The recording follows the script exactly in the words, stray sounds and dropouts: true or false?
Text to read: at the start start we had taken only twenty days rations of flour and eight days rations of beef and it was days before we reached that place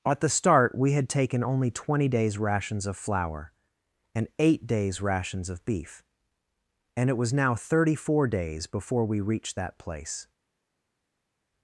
false